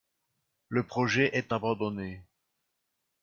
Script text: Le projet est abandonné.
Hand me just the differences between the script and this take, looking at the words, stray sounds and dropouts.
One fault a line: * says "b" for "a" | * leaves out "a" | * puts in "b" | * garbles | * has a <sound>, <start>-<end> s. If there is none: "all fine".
all fine